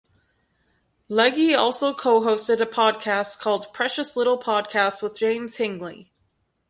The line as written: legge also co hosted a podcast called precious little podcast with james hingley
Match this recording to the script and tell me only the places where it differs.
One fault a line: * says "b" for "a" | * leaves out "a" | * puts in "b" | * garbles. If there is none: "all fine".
all fine